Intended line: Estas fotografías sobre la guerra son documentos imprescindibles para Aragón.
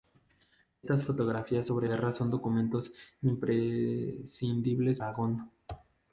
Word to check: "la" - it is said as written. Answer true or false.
false